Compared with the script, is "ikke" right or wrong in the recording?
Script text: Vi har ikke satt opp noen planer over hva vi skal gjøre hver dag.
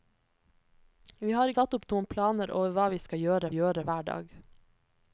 wrong